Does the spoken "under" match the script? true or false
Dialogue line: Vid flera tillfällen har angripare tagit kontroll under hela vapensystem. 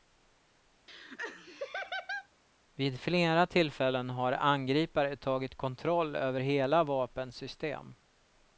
false